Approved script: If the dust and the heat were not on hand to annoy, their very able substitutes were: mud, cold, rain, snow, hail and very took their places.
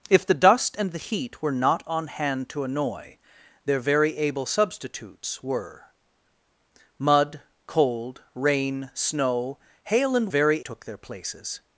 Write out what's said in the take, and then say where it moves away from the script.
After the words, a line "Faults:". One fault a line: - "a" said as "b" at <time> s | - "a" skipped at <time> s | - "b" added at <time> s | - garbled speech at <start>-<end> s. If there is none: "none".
If the dust and the heat were not on hand to annoy, their very able substitutes were: mud, cold, rain, snow, hail and very took their places.
Faults:
none